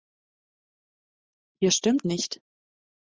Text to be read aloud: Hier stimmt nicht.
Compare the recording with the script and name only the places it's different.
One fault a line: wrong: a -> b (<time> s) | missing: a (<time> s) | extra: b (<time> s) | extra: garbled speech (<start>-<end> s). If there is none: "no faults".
no faults